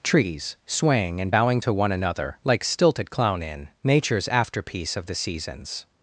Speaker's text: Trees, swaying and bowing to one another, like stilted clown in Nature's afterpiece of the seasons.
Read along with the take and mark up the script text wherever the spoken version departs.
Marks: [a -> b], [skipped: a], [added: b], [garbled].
Trees, swaying and bowing to one another, like stilted clown in Nature's afterpiece of the seasons.